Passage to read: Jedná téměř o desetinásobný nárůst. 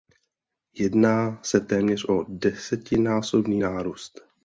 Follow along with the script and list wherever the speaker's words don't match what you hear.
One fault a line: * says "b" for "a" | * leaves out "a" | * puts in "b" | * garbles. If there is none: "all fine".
* puts in "se"